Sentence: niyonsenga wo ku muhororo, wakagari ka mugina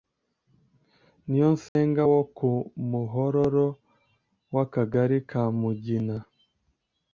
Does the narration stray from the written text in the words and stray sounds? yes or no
yes